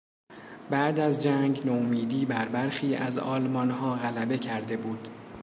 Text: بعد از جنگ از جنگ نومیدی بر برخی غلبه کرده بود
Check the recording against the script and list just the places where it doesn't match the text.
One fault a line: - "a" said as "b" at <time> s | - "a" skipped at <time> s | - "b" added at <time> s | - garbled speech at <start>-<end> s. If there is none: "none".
- "از جنگ" skipped at 1.6 s
- "از آلمانها" added at 3.0 s